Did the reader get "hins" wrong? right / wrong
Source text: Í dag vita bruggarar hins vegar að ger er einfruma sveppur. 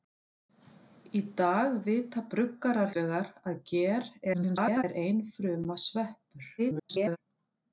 wrong